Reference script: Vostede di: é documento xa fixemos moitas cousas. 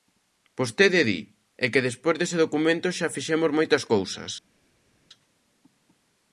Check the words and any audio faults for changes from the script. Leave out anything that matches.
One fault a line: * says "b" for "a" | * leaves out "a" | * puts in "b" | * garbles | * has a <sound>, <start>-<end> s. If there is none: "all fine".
* puts in "que despois dese"